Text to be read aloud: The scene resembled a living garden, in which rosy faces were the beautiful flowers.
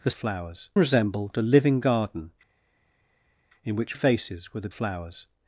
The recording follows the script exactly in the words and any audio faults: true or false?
false